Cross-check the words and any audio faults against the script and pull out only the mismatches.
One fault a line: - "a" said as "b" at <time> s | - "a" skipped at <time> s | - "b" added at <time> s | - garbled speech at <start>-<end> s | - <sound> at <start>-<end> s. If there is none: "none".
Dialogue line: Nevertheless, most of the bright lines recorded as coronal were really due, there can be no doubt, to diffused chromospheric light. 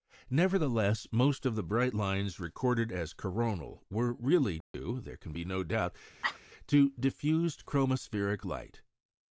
- dropout at 4.6-4.7 s
- cough at 6.2-6.4 s